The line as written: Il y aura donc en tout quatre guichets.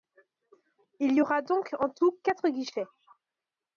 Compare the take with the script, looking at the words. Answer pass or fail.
pass